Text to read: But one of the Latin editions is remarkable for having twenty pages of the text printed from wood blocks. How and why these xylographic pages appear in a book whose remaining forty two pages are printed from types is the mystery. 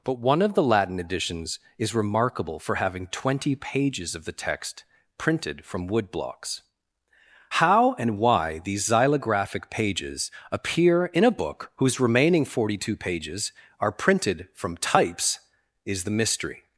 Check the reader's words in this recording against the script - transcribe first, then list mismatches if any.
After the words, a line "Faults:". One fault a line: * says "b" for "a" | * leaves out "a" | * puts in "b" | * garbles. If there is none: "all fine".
But one of the Latin editions is remarkable for having twenty pages of the text printed from wood blocks. How and why these xylographic pages appear in a book whose remaining forty two pages are printed from types is the mystery.
Faults:
all fine